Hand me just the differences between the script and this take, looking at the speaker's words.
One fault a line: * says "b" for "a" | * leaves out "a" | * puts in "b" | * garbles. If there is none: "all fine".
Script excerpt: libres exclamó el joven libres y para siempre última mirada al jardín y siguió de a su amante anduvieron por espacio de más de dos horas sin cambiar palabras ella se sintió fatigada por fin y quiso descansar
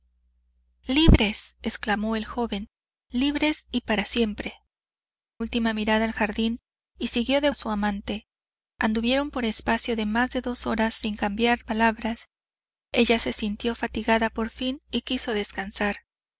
all fine